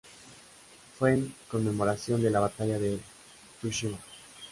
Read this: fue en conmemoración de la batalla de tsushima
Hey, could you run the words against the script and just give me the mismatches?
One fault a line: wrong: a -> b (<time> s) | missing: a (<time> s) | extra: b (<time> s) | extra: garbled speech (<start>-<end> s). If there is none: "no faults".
no faults